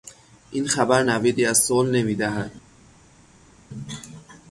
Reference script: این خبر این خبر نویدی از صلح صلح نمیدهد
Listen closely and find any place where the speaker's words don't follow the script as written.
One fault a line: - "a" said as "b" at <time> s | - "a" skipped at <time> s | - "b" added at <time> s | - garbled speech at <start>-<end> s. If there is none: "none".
- "این خبر" skipped at 1.0 s
- "صلح" skipped at 1.9 s